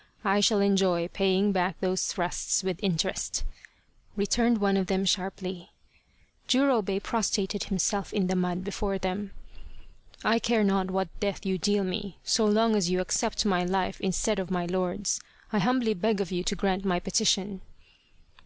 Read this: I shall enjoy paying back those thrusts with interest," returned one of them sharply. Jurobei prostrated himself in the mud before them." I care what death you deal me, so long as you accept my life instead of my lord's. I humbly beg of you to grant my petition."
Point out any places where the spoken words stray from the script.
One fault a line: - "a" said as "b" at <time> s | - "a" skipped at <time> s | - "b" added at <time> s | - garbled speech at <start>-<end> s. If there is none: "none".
- "not" added at 10.6 s